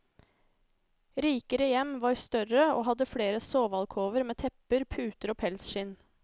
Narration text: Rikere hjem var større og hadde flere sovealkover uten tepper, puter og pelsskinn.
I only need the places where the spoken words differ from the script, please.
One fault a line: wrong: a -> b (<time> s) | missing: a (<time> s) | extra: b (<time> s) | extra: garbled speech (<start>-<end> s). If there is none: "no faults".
wrong: uten -> med (4.2 s)